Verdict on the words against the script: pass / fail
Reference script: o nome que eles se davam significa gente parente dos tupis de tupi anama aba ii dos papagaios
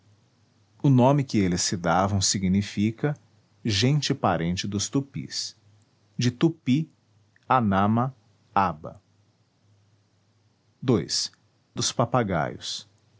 pass